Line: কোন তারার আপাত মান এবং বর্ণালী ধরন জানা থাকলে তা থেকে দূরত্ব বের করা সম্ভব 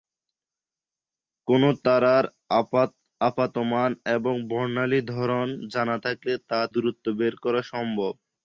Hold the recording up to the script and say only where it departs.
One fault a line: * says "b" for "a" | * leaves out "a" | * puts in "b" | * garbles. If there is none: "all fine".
* leaves out "থেকে"